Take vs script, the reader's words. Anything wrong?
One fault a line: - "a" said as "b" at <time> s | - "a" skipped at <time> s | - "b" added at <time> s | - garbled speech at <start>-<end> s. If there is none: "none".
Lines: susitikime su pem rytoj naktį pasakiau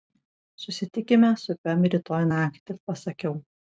none